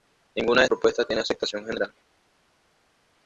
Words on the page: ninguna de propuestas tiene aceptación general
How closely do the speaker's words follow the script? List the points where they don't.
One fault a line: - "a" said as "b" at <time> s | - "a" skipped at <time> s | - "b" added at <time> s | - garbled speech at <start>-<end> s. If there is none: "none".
none